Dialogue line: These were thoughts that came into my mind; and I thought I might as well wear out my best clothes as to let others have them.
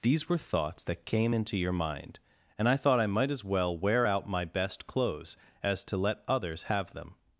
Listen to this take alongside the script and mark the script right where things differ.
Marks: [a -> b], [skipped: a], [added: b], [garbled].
These were thoughts that came into [my -> your] mind; and I thought I might as well wear out my best clothes as to let others have them.